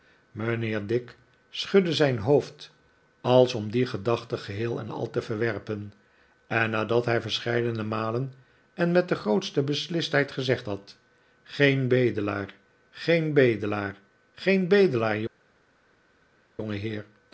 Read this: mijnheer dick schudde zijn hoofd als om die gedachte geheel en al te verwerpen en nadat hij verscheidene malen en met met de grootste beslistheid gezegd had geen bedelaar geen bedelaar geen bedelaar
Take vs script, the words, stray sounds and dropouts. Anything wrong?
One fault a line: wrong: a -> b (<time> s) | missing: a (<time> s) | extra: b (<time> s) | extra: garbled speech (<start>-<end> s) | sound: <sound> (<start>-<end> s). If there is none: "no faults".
missing: met (9.1 s)